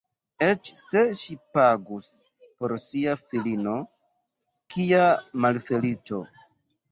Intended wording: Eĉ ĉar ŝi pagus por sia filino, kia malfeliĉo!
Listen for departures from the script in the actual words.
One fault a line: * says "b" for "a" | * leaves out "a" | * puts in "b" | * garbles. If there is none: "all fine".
* says "se" for "ĉar"